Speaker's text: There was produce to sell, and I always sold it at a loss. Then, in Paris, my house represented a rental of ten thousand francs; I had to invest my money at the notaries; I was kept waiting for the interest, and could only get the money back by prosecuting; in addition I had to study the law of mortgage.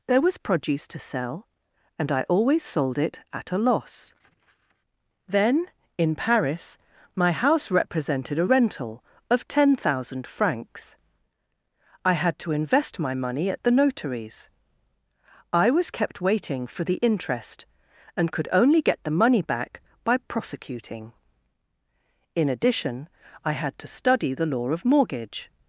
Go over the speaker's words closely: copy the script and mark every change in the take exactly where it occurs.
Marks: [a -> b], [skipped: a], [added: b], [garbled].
There was produce to sell, and I always sold it at a loss. Then, in Paris, my house represented a rental of ten thousand francs; I had to invest my money at the notaries; I was kept waiting for the interest, and could only get the money back by prosecuting; in addition I had to study the law of mortgage.